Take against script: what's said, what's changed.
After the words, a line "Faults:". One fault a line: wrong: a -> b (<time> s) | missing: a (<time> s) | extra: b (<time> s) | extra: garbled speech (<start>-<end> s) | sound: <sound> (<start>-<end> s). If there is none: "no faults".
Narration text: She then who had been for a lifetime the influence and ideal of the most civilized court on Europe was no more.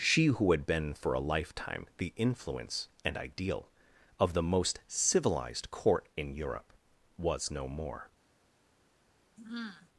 She who had been for a lifetime the influence and ideal of the most civilized court in Europe was no more.
Faults:
missing: then (0.2 s)
wrong: on -> in (6.2 s)
sound: sigh (9.4-9.9 s)